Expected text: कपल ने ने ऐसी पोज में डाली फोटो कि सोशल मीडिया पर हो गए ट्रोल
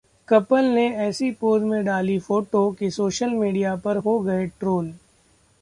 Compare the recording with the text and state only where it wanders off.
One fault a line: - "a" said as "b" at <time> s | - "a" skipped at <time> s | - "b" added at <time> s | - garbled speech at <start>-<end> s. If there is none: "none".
- "ने" skipped at 0.9 s